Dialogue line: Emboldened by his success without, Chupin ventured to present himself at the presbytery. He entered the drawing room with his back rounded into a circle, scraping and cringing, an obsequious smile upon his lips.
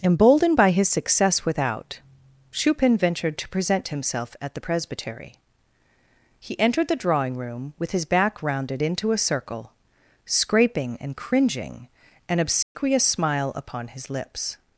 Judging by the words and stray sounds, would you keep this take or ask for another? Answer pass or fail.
fail